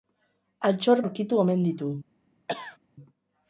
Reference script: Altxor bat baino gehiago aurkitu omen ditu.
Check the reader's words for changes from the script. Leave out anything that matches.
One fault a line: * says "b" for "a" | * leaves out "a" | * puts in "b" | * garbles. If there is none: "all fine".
* leaves out "bat baino gehiago"